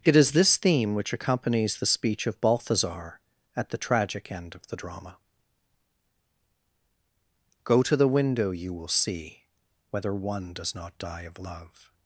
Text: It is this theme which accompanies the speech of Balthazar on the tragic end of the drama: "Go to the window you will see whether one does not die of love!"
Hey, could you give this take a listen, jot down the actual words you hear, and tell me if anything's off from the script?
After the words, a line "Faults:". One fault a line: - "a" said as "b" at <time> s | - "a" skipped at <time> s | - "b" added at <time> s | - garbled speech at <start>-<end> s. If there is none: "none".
It is this theme which accompanies the speech of Balthazar at the tragic end of the drama: "Go to the window you will see whether one does not die of love!"
Faults:
- "on" said as "at" at 3.5 s